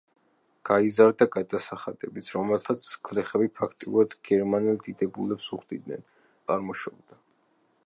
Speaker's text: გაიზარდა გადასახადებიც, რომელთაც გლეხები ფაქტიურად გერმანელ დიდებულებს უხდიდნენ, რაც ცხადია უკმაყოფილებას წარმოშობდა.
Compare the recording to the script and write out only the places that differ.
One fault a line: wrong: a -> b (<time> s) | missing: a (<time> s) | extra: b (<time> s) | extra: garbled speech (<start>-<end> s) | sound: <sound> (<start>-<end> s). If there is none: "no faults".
missing: რაც ცხადია უკმაყოფილებას (6.0 s)